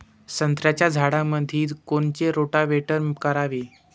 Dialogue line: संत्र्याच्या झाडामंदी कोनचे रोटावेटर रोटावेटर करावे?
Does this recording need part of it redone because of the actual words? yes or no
yes